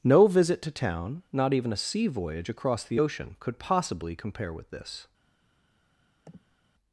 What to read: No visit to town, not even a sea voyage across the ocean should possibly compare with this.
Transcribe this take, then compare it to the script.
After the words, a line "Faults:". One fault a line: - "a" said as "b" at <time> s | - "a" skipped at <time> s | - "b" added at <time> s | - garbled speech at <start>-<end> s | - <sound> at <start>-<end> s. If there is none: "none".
No visit to town, not even a sea voyage across the ocean could possibly compare with this.
Faults:
- "should" said as "could" at 3.4 s
- sniff at 6.3-6.6 s